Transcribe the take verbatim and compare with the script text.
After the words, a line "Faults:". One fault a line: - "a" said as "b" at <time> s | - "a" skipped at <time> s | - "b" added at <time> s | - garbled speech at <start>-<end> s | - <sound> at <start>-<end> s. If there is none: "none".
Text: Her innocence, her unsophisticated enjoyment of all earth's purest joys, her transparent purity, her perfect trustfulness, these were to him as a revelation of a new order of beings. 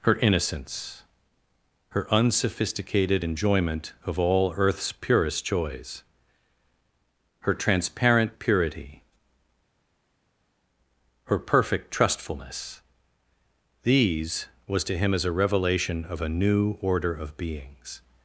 Her innocence, her unsophisticated enjoyment of all earth's purest joys, her transparent purity, her perfect trustfulness, these was to him as a revelation of a new order of beings.
Faults:
- "were" said as "was" at 14.7 s